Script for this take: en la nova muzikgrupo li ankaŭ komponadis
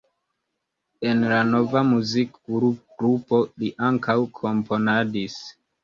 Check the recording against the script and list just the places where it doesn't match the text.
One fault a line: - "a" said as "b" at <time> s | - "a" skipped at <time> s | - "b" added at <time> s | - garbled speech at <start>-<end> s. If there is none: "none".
none